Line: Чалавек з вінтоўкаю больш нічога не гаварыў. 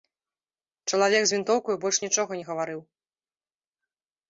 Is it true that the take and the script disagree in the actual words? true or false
false